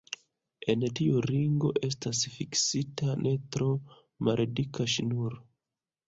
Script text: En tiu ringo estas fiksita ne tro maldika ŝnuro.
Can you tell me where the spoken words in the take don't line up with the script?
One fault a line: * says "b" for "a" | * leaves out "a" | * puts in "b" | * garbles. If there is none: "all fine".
all fine